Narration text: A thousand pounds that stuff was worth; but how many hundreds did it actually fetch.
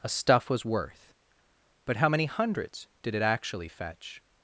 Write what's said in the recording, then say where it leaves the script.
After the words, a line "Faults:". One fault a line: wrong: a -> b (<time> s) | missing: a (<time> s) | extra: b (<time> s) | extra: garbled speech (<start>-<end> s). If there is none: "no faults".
A stuff was worth; but how many hundreds did it actually fetch.
Faults:
missing: thousand pounds that (0.1 s)